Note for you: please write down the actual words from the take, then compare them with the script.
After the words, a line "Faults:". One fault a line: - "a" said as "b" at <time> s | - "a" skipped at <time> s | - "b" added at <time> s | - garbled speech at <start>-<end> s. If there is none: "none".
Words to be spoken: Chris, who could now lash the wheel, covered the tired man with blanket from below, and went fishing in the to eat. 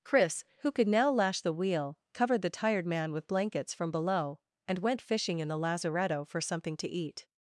Chris, who could now lash the wheel, covered the tired man with blankets from below, and went fishing in the lazaretto for something to eat.
Faults:
- "blanket" said as "blankets" at 3.3 s
- "lazaretto for something" added at 5.6 s